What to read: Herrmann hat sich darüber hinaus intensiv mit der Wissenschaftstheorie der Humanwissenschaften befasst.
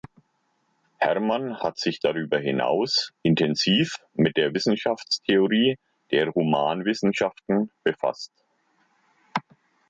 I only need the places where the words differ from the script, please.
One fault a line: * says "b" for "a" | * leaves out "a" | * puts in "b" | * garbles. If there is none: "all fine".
all fine